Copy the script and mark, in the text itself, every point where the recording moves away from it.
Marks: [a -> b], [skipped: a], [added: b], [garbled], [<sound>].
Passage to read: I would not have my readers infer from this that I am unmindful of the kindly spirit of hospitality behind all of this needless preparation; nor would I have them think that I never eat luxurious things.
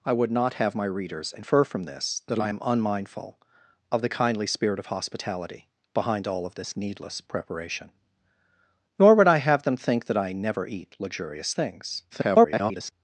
I would not have my readers infer from this that I am unmindful of the kindly spirit of hospitality behind all of this needless preparation; nor would I have them think that I never eat luxurious things. [garbled]